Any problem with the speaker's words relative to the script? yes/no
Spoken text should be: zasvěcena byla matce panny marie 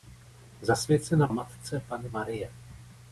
yes